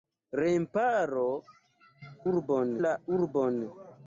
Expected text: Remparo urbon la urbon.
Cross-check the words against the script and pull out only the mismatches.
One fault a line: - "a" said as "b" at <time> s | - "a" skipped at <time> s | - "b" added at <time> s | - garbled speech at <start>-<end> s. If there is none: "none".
none